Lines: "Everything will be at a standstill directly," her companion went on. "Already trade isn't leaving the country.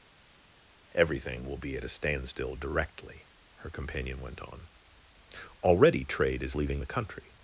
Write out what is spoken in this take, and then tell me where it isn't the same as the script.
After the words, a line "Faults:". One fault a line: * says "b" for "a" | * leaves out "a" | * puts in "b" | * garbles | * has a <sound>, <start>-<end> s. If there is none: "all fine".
"Everything will be at a standstill directly," her companion went on. "Already trade is leaving the country.
Faults:
* says "is" for "isn't"